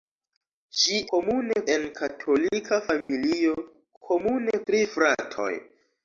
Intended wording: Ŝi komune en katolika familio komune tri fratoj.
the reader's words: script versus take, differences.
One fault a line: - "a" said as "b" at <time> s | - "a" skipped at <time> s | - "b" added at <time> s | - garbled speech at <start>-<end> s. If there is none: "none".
none